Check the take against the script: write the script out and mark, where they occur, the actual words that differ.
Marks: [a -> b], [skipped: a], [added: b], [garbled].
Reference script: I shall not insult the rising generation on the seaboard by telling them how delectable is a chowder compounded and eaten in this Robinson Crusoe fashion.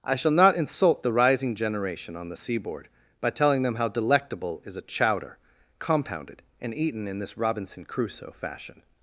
I shall not insult the rising generation on the seaboard by telling them how delectable is a chowder compounded and eaten in this Robinson Crusoe fashion.